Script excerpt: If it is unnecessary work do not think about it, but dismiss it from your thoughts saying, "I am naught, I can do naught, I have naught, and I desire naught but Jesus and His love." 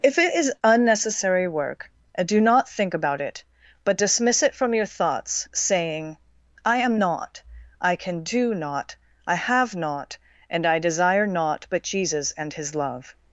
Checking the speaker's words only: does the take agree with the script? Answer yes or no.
yes